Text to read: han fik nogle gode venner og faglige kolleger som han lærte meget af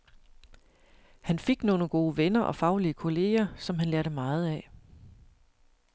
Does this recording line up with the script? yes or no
yes